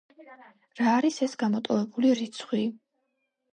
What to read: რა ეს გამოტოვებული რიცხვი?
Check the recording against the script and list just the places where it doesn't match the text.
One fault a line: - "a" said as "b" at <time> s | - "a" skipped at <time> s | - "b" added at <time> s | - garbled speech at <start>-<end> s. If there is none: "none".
- "არის" added at 1.0 s